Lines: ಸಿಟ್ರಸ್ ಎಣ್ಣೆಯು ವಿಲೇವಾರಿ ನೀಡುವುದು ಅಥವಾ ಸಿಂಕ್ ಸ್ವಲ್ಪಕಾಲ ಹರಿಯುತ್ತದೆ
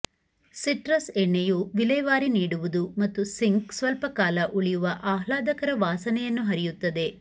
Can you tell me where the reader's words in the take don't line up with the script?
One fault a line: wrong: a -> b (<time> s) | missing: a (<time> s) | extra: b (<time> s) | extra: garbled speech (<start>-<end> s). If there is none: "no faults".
wrong: ಅಥವಾ -> ಮತ್ತು (3.0 s)
extra: ಉಳಿಯುವ ಆಹ್ಲಾದಕರ ವಾಸನೆಯನ್ನು (4.5 s)